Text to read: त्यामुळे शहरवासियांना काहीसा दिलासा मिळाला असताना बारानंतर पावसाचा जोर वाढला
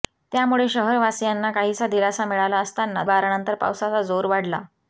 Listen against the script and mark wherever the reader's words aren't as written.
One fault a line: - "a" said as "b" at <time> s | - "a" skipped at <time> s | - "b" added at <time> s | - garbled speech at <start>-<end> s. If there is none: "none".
none